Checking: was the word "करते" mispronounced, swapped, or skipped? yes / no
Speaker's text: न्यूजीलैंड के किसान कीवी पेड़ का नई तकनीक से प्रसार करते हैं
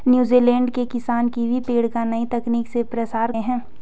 yes